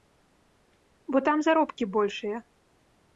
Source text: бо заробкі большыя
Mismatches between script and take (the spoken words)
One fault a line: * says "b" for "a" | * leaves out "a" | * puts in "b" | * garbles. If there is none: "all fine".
* puts in "там"